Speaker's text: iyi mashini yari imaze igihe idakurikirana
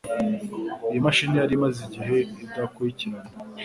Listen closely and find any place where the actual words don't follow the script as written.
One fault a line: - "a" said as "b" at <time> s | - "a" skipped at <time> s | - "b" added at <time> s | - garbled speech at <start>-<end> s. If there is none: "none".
none